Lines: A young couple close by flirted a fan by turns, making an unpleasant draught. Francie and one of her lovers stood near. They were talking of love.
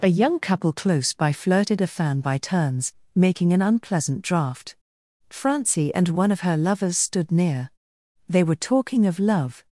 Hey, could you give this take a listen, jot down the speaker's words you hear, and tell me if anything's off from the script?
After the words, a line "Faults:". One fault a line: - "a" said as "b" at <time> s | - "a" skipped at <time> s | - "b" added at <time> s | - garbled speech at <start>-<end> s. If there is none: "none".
A young couple close by flirted a fan by turns, making an unpleasant draught. Francie and one of her lovers stood near. They were talking of love.
Faults:
none